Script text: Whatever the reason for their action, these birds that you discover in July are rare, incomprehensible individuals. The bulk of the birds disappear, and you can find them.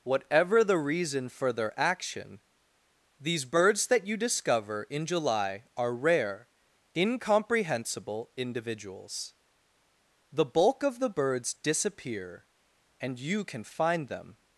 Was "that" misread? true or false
false